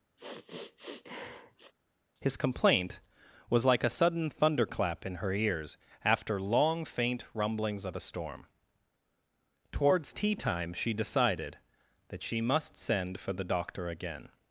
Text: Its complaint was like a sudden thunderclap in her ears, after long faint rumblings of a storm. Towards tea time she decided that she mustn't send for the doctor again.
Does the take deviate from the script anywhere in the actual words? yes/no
yes